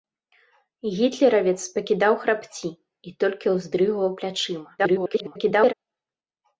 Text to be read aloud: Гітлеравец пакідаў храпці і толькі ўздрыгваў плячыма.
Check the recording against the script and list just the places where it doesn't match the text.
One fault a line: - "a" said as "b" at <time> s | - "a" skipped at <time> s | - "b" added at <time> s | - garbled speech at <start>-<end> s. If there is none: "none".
- garbled speech at 4.8-5.7 s